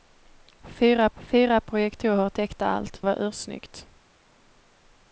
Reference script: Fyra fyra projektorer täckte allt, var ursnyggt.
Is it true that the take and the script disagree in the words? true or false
false